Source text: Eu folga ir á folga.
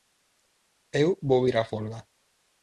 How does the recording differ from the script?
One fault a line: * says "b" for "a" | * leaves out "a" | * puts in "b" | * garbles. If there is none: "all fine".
* says "vou" for "folga"